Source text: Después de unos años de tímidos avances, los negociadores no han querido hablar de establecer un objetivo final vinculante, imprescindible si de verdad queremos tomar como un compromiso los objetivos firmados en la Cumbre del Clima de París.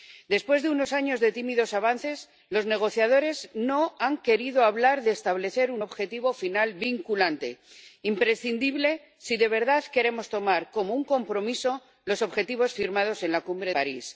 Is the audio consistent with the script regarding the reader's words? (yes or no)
no